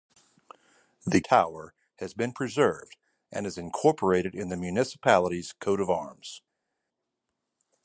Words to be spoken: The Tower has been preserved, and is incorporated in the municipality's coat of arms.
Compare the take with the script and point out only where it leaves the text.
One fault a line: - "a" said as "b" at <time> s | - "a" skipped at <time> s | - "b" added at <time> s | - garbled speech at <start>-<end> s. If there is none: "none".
none